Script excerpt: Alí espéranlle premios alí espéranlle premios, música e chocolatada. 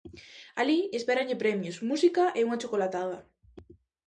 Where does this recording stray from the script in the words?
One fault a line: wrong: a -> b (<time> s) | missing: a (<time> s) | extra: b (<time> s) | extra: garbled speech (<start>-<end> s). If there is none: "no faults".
missing: alí espéranlle premios (1.8 s)
extra: unha (2.5 s)